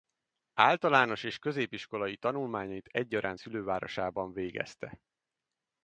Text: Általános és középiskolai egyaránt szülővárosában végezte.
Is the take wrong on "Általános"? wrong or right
right